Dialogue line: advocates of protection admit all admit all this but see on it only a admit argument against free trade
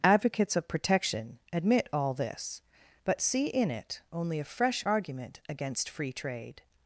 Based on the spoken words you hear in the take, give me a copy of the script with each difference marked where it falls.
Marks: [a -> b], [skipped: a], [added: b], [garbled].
advocates of protection admit all [skipped: admit all] this but see [on -> in] it only a [admit -> fresh] argument against free trade